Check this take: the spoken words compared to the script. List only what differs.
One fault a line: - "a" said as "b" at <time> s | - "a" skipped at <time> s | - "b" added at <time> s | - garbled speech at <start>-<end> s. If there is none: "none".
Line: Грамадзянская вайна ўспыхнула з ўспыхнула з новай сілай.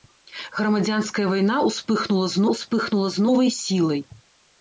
none